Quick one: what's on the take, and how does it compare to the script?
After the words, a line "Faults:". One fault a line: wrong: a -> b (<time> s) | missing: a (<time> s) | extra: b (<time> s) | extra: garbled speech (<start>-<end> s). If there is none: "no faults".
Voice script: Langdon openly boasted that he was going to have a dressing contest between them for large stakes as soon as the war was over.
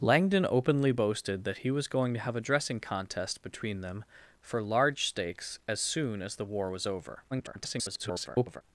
Langdon openly boasted that he was going to have a dressing contest between them for large stakes as soon as the war was over. [garbled]
Faults:
extra: garbled speech (7.3-8.6 s)